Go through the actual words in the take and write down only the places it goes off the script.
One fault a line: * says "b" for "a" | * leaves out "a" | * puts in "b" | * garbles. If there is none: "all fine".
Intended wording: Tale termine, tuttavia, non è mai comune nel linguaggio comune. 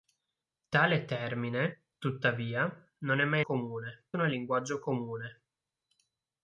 all fine